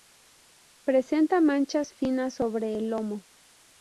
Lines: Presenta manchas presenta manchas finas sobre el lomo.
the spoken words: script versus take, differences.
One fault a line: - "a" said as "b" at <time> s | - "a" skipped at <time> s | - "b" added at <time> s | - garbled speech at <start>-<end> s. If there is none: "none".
- "presenta manchas" skipped at 1.9 s